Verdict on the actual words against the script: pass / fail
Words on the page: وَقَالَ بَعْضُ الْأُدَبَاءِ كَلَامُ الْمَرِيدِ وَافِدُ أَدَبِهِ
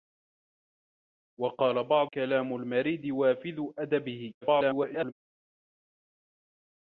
fail